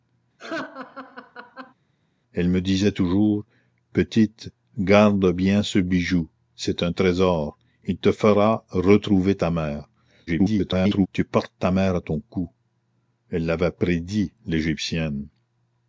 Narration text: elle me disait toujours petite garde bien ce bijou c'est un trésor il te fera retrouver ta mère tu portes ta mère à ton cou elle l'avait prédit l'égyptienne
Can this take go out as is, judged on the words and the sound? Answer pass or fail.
fail